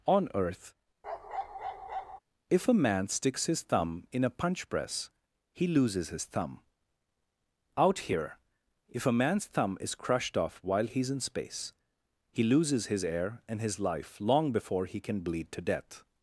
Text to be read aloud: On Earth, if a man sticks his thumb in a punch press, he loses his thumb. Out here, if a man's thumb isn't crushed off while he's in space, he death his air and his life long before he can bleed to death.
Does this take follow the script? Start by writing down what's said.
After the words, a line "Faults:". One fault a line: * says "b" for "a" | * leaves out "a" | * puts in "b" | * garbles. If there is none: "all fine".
On Earth, if a man sticks his thumb in a punch press, he loses his thumb. Out here, if a man's thumb is crushed off while he's in space, he loses his air and his life long before he can bleed to death.
Faults:
* says "is" for "isn't"
* says "loses" for "death"